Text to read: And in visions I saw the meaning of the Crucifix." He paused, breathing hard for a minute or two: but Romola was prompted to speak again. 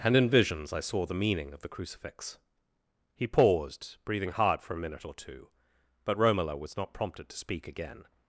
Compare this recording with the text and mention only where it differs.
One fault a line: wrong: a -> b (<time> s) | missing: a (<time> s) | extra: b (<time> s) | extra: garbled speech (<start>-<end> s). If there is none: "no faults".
extra: not (6.8 s)